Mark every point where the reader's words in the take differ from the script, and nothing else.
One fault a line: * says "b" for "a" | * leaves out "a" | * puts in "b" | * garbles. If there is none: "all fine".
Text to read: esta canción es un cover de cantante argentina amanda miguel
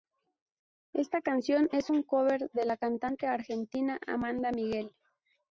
* puts in "la"